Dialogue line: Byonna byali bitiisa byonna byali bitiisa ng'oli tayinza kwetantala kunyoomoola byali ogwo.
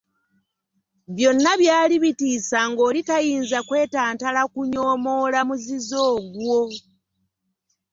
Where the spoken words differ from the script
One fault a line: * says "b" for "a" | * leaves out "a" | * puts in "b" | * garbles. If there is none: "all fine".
* leaves out "byonna byali bitiisa"
* says "muzizo" for "byali"